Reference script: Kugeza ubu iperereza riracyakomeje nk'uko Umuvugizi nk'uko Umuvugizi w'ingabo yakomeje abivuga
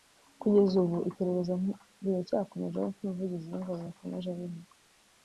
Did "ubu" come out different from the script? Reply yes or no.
no